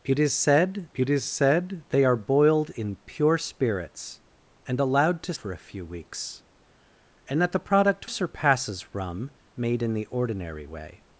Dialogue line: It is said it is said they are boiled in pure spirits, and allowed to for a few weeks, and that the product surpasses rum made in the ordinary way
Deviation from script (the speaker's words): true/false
false